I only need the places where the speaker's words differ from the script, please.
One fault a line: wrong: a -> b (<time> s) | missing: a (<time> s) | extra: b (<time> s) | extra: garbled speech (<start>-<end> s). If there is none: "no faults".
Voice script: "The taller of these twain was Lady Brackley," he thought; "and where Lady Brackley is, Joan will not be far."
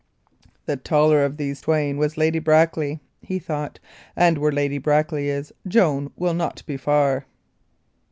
no faults